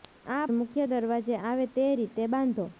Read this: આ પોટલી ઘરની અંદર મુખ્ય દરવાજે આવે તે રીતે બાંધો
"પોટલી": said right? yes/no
no